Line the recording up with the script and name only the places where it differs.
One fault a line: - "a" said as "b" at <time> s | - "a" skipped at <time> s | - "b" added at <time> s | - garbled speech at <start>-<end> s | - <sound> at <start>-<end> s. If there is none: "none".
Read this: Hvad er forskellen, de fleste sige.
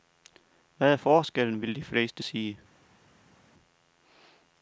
- "vil" added at 1.6 s